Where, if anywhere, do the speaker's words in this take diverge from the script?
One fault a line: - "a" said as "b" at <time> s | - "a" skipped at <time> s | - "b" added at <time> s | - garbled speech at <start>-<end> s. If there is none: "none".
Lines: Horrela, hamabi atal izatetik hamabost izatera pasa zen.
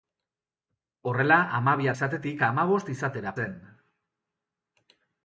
- "atal" skipped at 1.9 s
- "pasa" skipped at 3.4 s